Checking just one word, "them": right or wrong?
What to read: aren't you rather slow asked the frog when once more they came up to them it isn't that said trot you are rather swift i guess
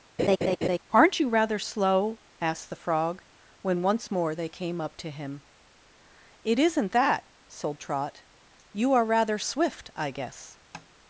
wrong